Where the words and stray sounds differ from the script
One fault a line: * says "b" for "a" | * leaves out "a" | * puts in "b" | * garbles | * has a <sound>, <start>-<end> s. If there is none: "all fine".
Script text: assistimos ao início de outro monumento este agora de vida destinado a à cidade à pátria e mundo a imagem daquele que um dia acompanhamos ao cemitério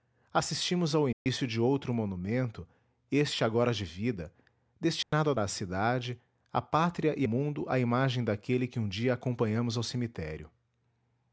* has a dropout, 1.1-1.3 s
* has a dropout, 5.0-5.1 s